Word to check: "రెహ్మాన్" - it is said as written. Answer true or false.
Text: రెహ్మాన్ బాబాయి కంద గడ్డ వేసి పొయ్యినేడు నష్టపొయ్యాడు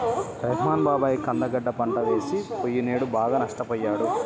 true